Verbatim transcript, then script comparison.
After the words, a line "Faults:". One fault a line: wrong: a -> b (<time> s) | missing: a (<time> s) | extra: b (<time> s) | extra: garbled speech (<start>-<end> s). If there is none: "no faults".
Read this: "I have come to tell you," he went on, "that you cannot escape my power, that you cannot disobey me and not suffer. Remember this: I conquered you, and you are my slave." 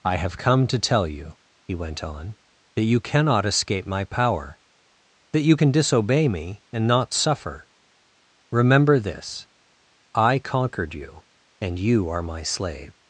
"I have come to tell you," he went on, "that you cannot escape my power, that you can disobey me and not suffer. Remember this: I conquered you, and you are my slave."
Faults:
wrong: cannot -> can (5.5 s)